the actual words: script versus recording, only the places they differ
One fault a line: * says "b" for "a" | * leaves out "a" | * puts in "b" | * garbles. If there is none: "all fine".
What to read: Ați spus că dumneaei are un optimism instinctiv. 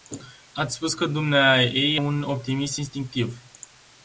* leaves out "are"